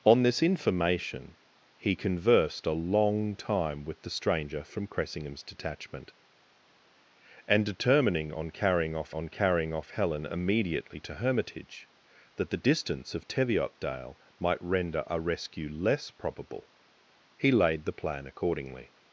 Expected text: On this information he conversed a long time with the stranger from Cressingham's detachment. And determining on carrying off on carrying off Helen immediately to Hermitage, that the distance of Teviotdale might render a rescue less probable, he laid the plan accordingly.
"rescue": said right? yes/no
yes